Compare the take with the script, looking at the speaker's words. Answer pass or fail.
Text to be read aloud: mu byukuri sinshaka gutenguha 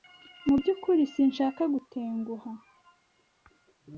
pass